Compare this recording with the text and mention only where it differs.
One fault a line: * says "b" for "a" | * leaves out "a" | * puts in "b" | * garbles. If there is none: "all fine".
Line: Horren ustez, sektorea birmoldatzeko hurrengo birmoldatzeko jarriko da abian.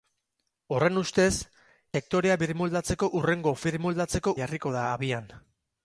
all fine